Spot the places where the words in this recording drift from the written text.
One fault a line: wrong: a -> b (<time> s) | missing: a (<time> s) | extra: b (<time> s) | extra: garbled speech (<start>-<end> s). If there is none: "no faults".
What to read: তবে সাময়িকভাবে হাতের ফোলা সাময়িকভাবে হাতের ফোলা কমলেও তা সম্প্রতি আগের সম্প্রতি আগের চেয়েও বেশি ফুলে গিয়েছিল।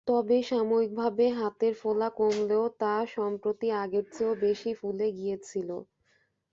missing: সাময়িকভাবে হাতের ফোলা (2.1 s)
missing: সম্প্রতি আগের (4.0 s)